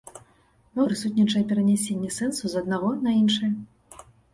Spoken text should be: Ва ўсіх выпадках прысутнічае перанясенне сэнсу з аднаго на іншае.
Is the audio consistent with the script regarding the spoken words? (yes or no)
no